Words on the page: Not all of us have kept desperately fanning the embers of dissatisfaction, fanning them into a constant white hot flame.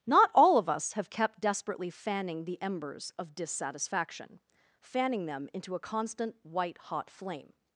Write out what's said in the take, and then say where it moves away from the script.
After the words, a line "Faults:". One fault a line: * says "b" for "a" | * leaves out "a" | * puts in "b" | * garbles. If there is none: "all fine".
Not all of us have kept desperately fanning the embers of dissatisfaction, fanning them into a constant white hot flame.
Faults:
all fine